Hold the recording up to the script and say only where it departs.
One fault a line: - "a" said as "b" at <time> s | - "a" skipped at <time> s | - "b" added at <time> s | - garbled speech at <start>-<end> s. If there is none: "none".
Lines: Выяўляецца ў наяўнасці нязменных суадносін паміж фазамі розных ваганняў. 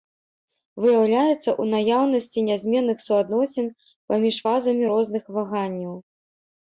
none